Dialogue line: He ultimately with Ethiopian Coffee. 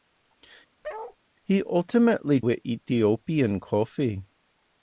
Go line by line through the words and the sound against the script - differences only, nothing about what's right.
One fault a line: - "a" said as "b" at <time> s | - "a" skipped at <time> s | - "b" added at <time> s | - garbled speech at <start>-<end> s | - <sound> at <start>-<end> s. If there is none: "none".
- bark at 0.8-1.2 s